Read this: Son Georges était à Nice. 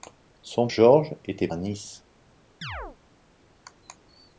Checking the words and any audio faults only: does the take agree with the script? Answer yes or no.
no